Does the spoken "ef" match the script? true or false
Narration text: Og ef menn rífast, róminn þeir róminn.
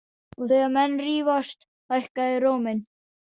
false